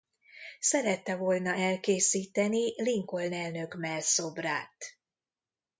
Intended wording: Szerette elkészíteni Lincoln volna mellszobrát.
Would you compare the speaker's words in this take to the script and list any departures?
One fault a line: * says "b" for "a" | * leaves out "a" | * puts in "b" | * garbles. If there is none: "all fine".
* puts in "volna"
* says "elnök" for "volna"